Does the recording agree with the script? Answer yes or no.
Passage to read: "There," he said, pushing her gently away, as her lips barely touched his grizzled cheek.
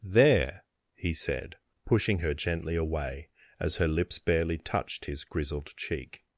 yes